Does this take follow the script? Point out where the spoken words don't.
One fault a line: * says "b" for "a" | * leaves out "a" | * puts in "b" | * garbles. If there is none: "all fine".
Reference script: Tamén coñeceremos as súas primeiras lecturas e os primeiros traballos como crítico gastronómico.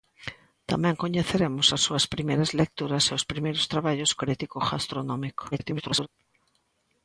* leaves out "como"
* garbles